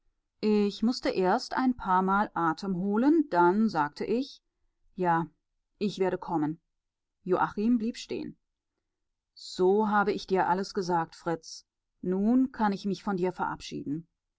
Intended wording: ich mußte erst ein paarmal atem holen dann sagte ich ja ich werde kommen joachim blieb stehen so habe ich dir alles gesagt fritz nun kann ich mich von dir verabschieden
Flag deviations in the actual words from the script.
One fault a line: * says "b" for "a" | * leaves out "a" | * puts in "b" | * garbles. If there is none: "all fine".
all fine